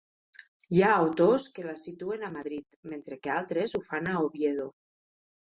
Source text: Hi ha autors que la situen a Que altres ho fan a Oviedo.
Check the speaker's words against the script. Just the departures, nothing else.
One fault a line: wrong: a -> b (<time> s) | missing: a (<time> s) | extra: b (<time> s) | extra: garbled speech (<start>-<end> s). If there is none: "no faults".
extra: Madrid mentre (2.4 s)